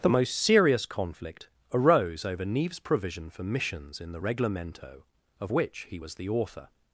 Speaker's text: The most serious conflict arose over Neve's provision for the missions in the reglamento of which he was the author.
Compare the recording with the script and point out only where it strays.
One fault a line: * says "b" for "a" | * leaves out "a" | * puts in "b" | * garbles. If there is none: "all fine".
* leaves out "the"